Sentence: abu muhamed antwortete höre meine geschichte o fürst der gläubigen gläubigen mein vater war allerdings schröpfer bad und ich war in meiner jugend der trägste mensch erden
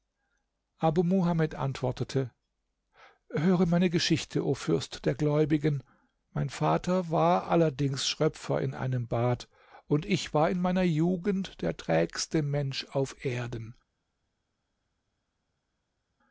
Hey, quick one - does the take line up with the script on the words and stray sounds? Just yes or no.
no